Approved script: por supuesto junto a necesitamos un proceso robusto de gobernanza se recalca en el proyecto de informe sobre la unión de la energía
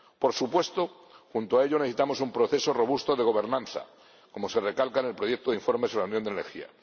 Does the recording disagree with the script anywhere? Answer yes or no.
yes